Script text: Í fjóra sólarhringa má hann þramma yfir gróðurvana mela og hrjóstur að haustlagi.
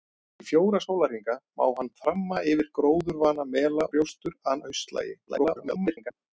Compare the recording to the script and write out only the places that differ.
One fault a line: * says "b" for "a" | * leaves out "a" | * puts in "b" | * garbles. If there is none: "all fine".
* leaves out "og"
* garbles